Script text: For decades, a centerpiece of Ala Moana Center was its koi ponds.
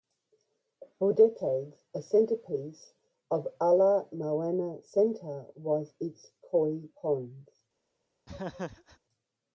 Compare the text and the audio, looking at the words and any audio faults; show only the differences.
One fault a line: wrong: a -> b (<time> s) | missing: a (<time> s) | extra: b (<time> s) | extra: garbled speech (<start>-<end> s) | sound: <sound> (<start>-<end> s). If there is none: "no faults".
sound: laugh (8.3-9.0 s)